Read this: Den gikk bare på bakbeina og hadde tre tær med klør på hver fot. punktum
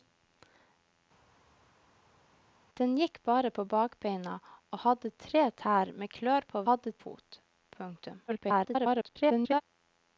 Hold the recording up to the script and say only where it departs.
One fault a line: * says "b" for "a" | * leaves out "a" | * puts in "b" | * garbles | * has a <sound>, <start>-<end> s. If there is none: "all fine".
* says "hadde" for "hver"
* garbles